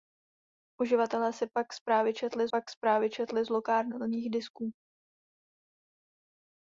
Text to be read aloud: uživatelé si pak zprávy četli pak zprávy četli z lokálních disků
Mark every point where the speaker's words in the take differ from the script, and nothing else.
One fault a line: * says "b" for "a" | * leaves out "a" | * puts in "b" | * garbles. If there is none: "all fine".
all fine